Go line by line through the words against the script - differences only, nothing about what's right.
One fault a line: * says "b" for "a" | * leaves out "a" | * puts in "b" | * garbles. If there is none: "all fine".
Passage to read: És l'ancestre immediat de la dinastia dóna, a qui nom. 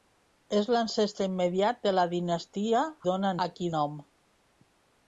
all fine